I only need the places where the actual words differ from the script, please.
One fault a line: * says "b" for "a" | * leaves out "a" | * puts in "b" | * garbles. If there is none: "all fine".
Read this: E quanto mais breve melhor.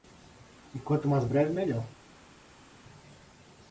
all fine